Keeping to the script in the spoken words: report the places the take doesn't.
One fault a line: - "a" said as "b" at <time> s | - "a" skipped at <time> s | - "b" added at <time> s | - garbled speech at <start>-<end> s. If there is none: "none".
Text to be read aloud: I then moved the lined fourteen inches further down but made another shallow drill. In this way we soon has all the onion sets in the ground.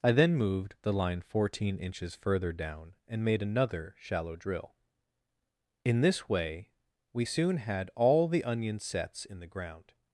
- "lined" said as "line" at 0.9 s
- "but" said as "and" at 3.1 s
- "has" said as "had" at 7.6 s